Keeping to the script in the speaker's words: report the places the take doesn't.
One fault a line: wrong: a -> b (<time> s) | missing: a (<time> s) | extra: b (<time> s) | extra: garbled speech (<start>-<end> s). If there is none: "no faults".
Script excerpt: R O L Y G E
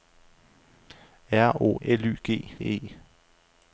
no faults